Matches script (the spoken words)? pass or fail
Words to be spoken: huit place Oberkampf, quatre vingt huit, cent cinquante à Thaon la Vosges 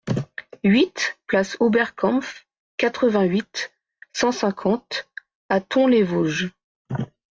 fail